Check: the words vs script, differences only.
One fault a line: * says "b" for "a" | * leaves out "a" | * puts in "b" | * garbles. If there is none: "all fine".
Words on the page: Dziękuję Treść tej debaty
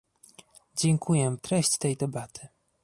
all fine